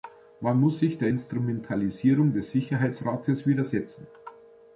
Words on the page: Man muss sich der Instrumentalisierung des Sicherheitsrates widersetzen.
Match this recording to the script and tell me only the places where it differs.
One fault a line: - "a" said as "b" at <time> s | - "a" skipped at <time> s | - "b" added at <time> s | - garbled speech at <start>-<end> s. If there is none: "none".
none